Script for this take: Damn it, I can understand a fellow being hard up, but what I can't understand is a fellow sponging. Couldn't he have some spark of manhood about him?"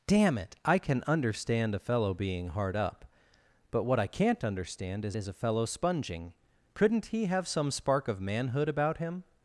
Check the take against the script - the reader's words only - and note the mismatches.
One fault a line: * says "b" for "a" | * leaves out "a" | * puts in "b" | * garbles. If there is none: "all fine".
* puts in "is"